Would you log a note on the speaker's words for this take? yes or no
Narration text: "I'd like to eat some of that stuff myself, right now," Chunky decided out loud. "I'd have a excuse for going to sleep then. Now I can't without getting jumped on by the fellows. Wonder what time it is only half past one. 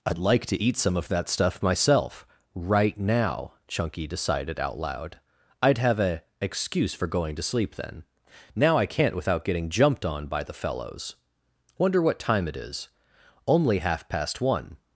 no